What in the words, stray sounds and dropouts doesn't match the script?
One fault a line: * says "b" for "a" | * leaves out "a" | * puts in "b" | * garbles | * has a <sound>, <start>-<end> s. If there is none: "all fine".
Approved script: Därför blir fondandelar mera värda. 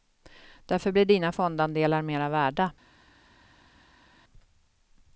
* puts in "dina"